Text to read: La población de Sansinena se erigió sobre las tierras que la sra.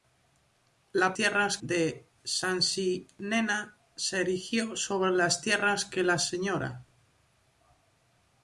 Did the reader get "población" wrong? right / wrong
wrong